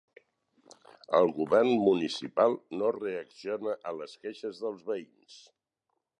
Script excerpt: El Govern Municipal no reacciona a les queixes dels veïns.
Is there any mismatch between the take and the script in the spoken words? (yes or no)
no